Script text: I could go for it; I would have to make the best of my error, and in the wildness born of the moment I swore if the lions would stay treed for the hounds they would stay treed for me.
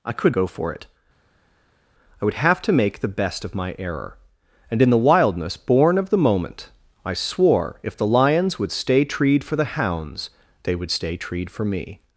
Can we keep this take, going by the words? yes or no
yes